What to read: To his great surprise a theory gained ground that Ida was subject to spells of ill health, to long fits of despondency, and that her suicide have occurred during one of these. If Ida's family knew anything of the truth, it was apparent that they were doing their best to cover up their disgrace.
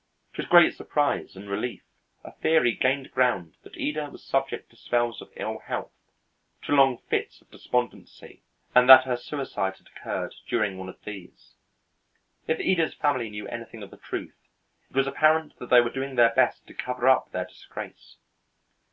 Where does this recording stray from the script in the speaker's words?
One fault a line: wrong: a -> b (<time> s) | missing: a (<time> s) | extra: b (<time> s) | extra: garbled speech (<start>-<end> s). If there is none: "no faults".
extra: and relief (1.3 s)
wrong: have -> had (9.8 s)